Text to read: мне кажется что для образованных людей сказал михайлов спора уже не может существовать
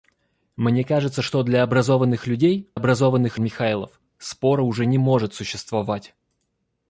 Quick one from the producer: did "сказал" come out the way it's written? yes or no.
no